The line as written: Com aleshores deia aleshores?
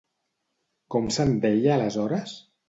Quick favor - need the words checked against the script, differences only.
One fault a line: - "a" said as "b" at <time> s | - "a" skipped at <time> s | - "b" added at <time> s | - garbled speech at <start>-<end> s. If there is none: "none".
- "aleshores" said as "se'n" at 1.2 s